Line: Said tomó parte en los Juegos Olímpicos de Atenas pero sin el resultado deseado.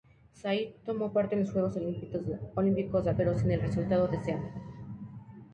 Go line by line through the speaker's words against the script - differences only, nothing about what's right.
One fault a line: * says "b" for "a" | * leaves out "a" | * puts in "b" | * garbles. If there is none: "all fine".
* leaves out "Atenas"